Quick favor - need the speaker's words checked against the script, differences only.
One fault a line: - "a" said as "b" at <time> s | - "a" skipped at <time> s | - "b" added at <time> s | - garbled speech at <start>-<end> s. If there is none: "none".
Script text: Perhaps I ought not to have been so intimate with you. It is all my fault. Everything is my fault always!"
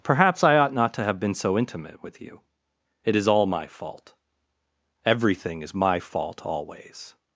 none